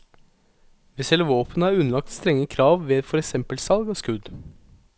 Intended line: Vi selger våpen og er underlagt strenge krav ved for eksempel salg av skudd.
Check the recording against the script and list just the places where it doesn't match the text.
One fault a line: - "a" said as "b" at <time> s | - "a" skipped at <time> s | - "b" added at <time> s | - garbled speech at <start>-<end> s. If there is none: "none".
none